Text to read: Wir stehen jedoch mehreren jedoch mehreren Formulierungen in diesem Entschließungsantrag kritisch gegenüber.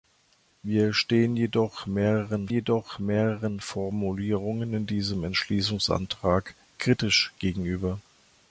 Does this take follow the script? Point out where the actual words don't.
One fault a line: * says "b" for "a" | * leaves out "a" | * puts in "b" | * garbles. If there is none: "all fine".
all fine